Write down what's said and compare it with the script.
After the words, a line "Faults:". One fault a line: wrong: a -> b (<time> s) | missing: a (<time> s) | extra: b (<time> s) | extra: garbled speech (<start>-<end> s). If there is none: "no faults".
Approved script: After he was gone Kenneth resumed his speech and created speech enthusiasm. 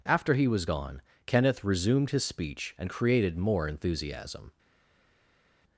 After he was gone Kenneth resumed his speech and created more enthusiasm.
Faults:
wrong: speech -> more (3.4 s)